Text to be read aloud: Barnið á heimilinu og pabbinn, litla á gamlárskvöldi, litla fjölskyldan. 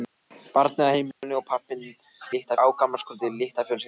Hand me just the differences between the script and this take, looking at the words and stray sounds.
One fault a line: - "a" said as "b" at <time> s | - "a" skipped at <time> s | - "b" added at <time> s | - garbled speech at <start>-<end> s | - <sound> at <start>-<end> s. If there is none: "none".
- dropout at 1.1-1.2 s